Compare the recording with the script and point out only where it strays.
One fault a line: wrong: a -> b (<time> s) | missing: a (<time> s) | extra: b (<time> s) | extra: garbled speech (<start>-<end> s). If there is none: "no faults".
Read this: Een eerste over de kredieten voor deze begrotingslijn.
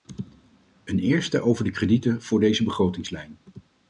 no faults